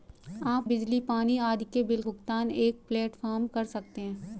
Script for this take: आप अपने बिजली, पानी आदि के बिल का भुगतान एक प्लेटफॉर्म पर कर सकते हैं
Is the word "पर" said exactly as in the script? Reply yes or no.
no